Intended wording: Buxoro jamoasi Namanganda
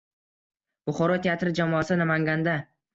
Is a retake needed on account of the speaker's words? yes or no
yes